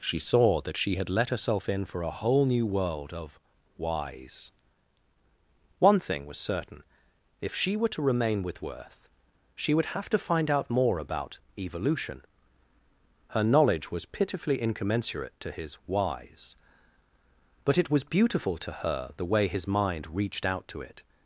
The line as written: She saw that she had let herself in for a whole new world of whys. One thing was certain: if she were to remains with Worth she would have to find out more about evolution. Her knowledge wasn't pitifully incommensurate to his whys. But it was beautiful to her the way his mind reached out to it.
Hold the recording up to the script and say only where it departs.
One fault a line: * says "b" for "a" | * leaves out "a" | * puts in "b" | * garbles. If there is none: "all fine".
* says "remain" for "remains"
* says "was" for "wasn't"